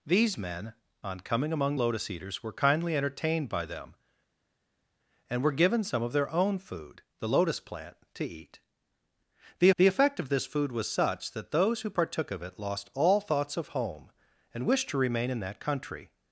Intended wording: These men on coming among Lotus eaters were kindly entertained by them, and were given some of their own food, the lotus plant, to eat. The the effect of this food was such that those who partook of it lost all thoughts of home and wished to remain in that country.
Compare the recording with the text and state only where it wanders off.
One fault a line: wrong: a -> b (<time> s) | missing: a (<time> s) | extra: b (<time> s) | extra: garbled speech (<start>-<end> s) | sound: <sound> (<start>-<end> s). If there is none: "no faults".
no faults